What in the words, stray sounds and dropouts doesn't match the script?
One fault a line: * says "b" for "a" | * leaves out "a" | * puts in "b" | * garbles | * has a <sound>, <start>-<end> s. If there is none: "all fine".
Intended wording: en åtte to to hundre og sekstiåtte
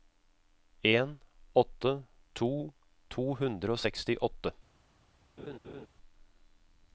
* has a laugh, 5.4-5.9 s